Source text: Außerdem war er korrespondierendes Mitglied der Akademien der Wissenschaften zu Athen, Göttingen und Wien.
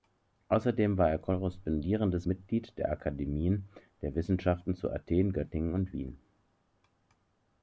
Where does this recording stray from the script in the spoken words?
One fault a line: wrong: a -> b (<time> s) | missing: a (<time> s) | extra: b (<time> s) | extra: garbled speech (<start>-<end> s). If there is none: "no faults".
no faults